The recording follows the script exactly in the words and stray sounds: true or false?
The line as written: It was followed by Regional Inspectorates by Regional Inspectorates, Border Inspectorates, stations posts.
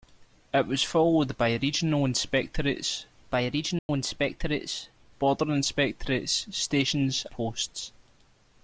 false